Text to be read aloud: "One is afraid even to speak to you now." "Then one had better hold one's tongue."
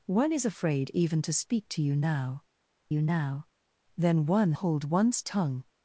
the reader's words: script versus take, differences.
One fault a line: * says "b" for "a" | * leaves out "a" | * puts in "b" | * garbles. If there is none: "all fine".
* puts in "you now"
* leaves out "had better"